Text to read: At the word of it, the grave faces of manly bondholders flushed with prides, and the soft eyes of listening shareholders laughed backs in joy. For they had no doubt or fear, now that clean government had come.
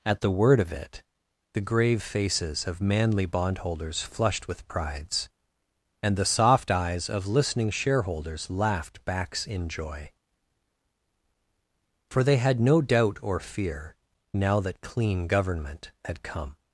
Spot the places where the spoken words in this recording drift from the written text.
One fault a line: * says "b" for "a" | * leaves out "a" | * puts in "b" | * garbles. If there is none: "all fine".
all fine